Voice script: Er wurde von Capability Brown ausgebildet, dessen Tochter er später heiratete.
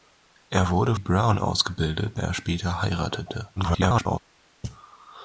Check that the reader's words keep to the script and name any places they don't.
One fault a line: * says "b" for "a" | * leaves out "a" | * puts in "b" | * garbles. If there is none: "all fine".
* leaves out "von Capability"
* leaves out "dessen Tochter"
* garbles